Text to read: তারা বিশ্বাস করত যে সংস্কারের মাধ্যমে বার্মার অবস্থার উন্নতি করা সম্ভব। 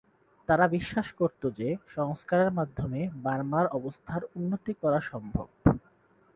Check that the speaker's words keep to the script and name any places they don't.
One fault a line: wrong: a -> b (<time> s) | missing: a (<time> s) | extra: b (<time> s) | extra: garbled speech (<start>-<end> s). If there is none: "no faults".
no faults